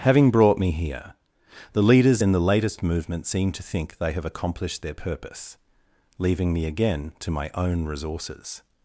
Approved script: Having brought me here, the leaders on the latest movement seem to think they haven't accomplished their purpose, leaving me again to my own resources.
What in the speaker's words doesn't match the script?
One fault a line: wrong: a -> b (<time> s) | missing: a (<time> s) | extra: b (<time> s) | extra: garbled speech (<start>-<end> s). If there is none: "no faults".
wrong: on -> in (2.2 s)
wrong: haven't -> have (4.1 s)